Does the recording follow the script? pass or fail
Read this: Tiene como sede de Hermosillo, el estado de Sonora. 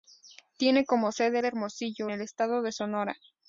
pass